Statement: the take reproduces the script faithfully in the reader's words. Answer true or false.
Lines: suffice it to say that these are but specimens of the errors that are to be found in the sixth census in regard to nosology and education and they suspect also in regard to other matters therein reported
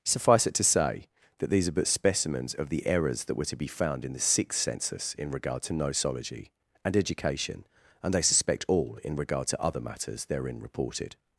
false